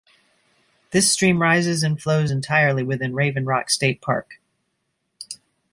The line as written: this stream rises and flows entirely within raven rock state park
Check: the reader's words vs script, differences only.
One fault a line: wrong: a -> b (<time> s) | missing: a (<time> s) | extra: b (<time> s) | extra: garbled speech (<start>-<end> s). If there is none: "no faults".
no faults